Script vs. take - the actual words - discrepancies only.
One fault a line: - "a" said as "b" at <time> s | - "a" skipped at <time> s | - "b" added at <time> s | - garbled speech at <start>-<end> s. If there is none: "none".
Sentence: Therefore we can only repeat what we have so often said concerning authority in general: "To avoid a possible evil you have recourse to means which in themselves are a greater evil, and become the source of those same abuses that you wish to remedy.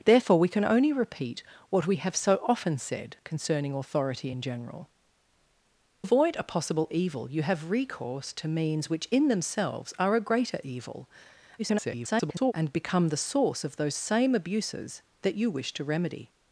- "To" skipped at 4.9 s
- garbled speech at 11.6-12.5 s